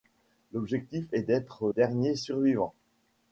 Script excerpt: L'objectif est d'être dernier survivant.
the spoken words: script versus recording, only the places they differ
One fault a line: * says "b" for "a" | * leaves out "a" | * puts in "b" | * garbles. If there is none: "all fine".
all fine